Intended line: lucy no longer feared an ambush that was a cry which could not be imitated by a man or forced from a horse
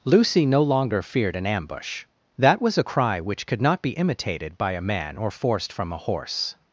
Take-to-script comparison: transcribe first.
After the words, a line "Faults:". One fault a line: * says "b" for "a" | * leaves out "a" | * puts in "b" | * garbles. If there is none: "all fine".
lucy no longer feared an ambush that was a cry which could not be imitated by a man or forced from a horse
Faults:
all fine